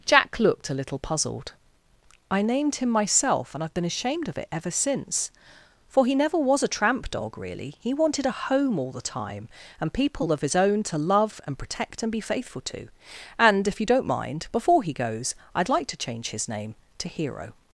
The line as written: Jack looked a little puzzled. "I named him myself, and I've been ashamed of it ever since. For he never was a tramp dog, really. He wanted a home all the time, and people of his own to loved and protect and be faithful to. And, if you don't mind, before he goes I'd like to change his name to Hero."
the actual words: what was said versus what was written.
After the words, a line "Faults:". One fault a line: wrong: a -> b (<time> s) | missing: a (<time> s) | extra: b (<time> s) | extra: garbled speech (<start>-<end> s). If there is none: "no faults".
Jack looked a little puzzled. "I named him myself, and I've been ashamed of it ever since. For he never was a tramp dog, really. He wanted a home all the time, and people of his own to love and protect and be faithful to. And, if you don't mind, before he goes I'd like to change his name to Hero."
Faults:
wrong: loved -> love (11.0 s)